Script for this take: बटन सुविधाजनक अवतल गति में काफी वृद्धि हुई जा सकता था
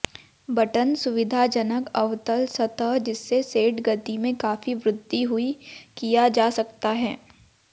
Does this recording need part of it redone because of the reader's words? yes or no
yes